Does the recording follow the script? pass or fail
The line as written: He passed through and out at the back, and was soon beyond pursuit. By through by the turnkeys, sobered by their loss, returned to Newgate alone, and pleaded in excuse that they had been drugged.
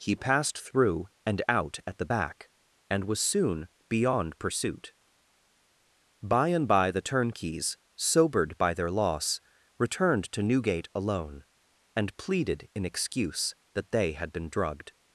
fail